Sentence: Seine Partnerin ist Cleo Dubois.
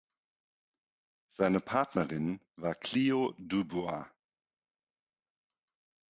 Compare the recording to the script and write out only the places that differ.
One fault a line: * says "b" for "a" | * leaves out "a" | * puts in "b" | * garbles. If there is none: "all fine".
* says "war" for "ist"